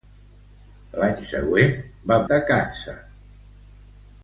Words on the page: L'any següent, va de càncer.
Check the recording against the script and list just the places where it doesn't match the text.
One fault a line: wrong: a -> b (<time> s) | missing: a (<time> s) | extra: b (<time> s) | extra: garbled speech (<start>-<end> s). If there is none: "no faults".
no faults